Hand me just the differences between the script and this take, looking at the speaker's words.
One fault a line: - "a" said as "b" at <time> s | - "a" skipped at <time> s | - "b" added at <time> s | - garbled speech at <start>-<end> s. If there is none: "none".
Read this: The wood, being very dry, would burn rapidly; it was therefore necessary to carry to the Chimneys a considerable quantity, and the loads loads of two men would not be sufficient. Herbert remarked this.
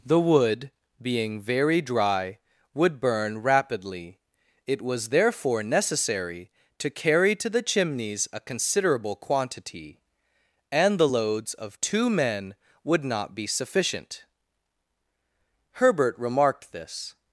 - "loads" skipped at 11.5 s